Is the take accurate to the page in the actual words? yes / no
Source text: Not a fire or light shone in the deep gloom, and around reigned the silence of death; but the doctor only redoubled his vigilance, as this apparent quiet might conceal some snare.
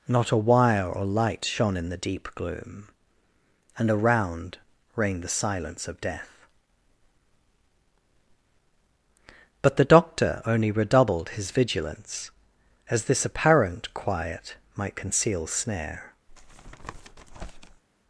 no